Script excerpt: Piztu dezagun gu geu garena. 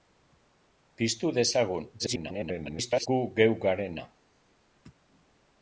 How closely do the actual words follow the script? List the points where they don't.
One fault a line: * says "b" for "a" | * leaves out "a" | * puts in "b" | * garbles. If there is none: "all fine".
* garbles